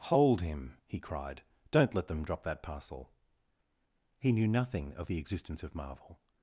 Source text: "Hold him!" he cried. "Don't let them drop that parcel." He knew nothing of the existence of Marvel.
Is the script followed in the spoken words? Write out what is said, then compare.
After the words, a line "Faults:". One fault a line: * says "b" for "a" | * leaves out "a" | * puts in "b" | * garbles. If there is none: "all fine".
"Hold him!" he cried. "Don't let them drop that parcel." He knew nothing of the existence of Marvel.
Faults:
all fine